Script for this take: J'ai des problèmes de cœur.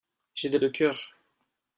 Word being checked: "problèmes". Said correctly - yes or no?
no